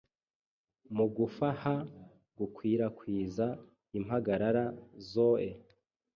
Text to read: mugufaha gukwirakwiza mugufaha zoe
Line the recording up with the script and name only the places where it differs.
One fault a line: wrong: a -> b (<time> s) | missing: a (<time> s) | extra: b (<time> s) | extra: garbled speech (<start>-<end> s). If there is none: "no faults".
wrong: mugufaha -> impagarara (4.0 s)